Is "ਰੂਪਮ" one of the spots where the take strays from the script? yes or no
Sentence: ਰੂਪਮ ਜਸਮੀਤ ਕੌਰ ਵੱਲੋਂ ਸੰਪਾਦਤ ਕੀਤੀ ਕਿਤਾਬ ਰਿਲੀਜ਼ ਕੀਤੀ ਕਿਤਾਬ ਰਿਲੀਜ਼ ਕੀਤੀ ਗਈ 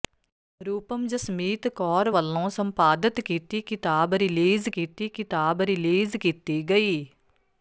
no